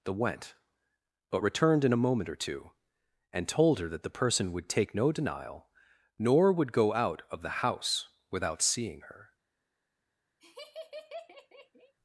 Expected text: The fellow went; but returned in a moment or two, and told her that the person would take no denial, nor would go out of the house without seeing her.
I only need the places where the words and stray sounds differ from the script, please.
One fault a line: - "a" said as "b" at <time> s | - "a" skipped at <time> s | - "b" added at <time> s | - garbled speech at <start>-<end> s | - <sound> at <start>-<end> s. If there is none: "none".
- "fellow" skipped at 0.1 s
- laugh at 10.4-11.9 s